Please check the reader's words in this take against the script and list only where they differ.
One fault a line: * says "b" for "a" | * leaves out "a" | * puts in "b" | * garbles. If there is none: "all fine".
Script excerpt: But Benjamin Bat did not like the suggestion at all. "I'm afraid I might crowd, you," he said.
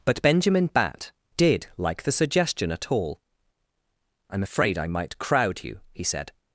* leaves out "not"